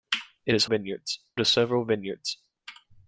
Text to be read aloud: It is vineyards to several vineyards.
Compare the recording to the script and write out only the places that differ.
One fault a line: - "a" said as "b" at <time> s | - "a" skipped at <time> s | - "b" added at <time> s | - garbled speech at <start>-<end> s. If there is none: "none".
none